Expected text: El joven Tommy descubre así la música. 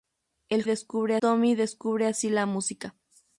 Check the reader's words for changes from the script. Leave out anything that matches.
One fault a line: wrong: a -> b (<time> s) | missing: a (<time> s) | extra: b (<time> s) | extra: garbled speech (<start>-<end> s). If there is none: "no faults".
wrong: joven -> descubre (0.6 s)